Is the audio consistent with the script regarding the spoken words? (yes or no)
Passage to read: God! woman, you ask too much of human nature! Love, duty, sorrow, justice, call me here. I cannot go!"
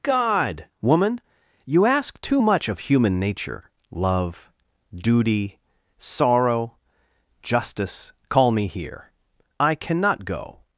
yes